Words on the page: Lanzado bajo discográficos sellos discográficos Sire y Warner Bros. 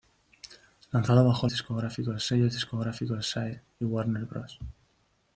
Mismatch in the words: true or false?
false